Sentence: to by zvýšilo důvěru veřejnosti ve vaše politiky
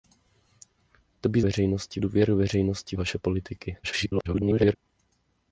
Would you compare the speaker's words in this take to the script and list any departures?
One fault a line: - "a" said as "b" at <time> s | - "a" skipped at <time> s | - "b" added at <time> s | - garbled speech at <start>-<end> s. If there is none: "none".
- "zvýšilo" said as "veřejnosti" at 1.4 s
- "ve" skipped at 3.0 s
- garbled speech at 3.8-4.8 s